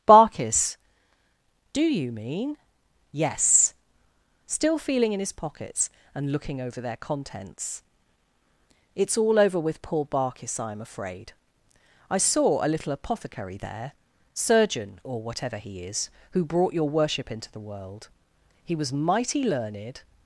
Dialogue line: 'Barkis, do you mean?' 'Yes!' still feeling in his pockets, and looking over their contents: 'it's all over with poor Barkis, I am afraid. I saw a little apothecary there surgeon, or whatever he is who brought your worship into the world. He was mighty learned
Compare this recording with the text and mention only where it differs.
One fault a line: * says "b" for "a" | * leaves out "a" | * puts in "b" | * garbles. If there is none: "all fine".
all fine